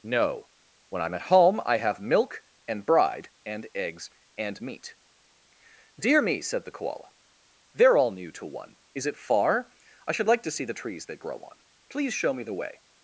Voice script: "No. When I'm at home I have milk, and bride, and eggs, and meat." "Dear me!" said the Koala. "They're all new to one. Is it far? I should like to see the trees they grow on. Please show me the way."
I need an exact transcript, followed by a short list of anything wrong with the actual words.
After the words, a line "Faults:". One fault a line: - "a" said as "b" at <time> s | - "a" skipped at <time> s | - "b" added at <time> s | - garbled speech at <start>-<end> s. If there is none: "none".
"No. When I'm at home I have milk, and bride, and eggs, and meat." "Dear me!" said the Koala. "They're all new to one. Is it far? I should like to see the trees they grow on. Please show me the way."
Faults:
none